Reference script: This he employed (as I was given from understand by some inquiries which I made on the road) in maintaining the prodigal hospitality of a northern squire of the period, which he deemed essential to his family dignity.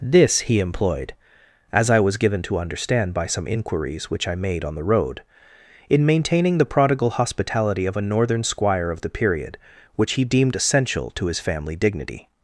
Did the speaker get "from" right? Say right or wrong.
wrong